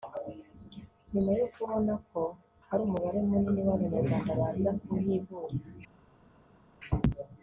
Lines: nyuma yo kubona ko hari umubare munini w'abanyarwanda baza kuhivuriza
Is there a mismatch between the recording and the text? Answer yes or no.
no